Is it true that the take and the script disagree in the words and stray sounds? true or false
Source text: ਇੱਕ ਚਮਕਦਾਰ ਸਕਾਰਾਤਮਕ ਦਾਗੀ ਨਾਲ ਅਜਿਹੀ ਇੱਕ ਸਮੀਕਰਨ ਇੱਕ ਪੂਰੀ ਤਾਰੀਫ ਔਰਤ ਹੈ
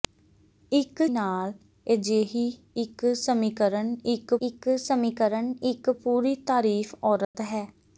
true